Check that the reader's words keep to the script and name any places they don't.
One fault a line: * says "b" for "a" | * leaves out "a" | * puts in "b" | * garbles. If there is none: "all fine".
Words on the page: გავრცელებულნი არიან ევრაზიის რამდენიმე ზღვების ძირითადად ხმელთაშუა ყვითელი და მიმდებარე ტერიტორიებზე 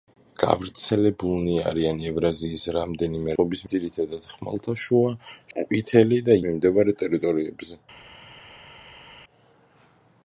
all fine